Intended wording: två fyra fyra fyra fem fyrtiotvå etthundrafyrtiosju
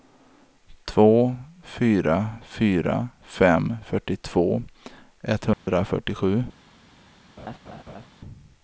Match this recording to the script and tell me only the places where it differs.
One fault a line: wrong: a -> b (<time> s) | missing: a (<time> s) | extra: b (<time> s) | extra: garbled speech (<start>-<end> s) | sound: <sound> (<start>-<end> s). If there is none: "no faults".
missing: fyra (3.1 s)
sound: dropout (5.5-5.7 s)
sound: laugh (7.4-8.1 s)